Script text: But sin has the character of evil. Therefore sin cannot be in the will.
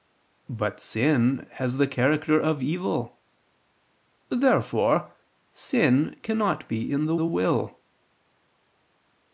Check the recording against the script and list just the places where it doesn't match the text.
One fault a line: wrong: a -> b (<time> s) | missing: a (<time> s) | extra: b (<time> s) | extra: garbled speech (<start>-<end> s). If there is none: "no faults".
extra: the (7.2 s)